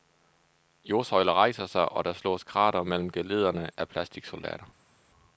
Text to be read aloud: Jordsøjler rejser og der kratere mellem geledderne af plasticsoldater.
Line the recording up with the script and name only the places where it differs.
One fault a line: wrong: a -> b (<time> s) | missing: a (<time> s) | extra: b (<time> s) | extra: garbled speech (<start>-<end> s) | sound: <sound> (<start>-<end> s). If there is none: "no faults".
extra: sig (1.6 s)
extra: slås (2.1 s)